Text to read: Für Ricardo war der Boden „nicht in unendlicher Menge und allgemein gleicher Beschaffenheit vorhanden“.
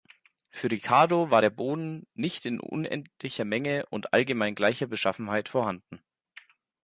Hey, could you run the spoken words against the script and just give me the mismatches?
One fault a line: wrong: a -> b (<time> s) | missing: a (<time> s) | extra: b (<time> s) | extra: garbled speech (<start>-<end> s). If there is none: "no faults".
no faults